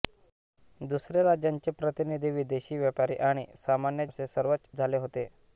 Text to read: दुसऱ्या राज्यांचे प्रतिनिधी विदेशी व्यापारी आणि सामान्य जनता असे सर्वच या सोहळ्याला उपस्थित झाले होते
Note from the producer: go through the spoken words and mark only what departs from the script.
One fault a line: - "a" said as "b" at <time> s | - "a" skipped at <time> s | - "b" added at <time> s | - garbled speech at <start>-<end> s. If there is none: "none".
- "जनता" skipped at 4.1 s
- "या सोहळ्याला उपस्थित" skipped at 4.7 s